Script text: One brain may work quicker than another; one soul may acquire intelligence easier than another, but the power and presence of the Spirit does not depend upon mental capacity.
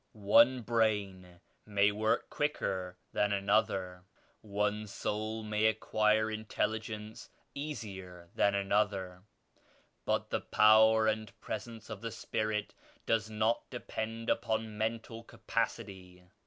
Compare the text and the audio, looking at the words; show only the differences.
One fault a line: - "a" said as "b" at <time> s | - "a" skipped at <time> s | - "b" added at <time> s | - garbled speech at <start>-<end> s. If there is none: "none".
none